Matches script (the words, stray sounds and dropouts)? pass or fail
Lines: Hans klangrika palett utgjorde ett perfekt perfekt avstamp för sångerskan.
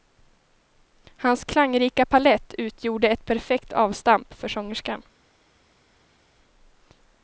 fail